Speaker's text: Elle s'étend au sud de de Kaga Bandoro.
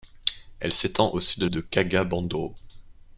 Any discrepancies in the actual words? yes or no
no